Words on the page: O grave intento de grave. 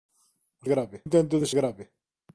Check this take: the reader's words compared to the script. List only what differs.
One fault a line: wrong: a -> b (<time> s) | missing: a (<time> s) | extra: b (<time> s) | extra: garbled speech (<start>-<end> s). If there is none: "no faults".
no faults